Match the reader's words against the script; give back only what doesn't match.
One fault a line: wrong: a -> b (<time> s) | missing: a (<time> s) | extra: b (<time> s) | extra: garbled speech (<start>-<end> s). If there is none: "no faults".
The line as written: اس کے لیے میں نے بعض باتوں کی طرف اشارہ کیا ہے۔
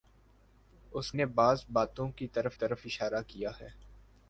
missing: کے لیے میں (1.1 s)
extra: طرف (2.5 s)